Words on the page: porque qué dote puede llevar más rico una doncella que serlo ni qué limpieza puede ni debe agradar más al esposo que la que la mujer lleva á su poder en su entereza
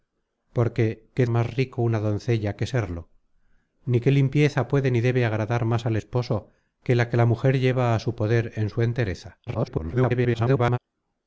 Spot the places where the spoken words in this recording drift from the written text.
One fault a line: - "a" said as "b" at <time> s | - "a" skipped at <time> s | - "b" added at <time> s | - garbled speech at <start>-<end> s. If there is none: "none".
- "dote puede llevar" skipped at 1.3 s
- garbled speech at 9.5-10.8 s